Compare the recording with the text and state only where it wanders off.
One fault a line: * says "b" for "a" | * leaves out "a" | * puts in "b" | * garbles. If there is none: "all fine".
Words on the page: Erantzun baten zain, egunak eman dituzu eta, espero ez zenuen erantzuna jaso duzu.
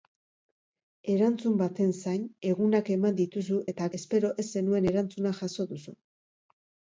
all fine